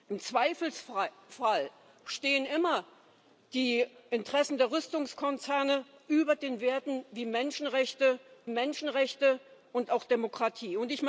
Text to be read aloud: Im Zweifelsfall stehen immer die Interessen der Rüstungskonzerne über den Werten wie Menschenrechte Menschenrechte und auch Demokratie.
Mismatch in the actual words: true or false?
false